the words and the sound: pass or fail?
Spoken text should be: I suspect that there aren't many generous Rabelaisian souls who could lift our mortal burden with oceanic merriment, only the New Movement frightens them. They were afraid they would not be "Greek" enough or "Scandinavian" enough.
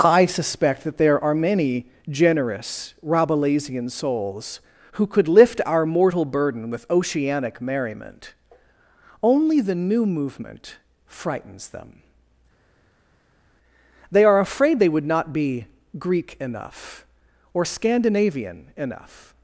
fail